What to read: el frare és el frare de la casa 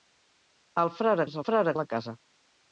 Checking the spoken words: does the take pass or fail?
pass